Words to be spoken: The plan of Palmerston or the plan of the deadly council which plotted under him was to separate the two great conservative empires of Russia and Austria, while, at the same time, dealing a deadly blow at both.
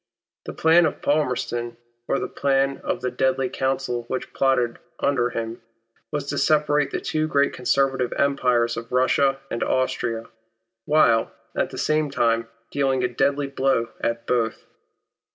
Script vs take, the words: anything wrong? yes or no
no